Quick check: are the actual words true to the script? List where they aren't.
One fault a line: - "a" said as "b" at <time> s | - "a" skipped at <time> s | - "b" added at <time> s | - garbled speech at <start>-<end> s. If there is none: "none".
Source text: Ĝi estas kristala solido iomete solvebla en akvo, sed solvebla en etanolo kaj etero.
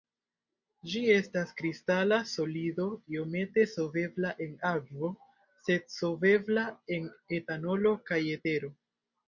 none